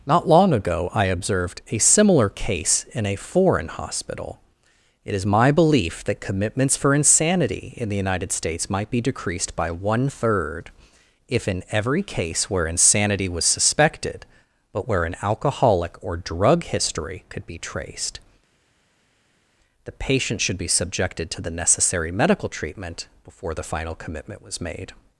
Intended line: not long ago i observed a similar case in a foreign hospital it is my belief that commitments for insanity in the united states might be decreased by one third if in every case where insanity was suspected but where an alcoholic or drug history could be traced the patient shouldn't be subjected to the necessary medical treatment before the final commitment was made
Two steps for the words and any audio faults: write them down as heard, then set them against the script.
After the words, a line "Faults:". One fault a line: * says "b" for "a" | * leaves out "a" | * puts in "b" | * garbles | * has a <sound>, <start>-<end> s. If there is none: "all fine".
not long ago i observed a similar case in a foreign hospital it is my belief that commitments for insanity in the united states might be decreased by one third if in every case where insanity was suspected but where an alcoholic or drug history could be traced the patient should be subjected to the necessary medical treatment before the final commitment was made
Faults:
* says "should" for "shouldn't"